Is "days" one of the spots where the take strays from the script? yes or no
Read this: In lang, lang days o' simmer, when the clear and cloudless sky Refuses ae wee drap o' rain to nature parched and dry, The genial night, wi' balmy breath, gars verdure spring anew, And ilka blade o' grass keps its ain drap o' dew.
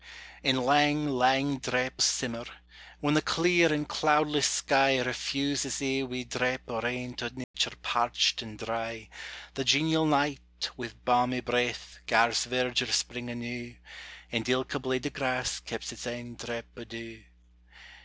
yes